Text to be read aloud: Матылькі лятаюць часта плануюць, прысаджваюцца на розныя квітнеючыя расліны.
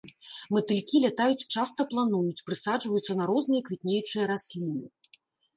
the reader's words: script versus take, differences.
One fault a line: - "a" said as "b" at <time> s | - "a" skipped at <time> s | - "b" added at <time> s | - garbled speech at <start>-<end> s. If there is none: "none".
none